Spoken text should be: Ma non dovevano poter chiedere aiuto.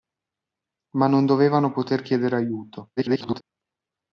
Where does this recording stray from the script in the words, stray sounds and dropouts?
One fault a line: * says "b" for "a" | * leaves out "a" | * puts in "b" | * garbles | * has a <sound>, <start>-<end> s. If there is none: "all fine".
* garbles